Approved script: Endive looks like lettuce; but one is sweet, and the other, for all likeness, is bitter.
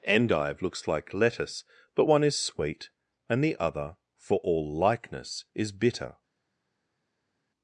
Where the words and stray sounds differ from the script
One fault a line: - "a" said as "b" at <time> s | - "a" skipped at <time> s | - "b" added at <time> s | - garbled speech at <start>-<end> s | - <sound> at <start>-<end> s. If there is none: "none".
none